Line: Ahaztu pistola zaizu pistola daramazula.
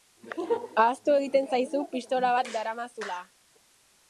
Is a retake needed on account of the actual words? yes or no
yes